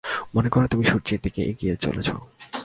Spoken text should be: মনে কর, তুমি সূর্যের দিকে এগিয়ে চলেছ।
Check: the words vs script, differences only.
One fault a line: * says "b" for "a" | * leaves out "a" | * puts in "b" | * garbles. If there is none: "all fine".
all fine